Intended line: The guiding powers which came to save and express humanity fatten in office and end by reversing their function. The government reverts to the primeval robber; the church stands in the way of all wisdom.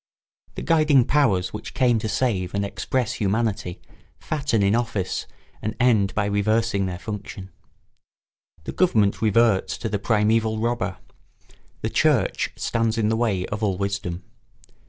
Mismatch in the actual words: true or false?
false